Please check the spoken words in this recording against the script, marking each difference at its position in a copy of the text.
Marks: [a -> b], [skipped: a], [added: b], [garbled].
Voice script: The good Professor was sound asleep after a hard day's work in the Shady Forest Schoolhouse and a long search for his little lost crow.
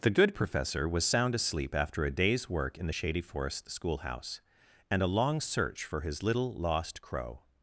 The good Professor was sound asleep after a [skipped: hard] day's work in the Shady Forest Schoolhouse and a long search for his little lost crow.